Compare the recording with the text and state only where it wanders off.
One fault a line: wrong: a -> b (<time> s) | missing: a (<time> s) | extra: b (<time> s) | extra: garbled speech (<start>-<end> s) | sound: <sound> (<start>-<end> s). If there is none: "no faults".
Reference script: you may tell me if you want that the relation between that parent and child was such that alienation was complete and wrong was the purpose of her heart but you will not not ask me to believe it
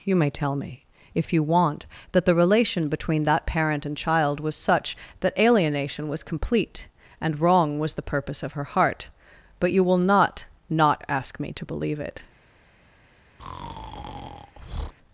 sound: breath (13.4-14.9 s)